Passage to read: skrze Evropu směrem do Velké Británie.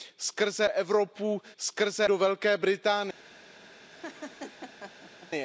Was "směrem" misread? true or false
true